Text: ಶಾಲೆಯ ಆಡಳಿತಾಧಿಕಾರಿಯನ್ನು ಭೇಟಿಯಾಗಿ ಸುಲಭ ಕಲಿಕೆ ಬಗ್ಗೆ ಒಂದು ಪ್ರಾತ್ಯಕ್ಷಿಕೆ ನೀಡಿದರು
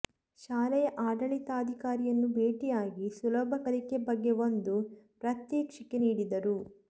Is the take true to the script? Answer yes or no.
yes